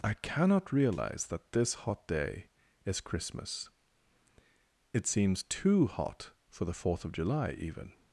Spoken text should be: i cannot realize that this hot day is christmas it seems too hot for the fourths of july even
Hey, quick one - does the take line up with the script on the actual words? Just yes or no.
no